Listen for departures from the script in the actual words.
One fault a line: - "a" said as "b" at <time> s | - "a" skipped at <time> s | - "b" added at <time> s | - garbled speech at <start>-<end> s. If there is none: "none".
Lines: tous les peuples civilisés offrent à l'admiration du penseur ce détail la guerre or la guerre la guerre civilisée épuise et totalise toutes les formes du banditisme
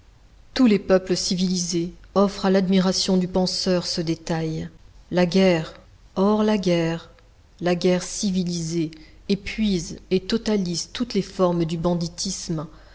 none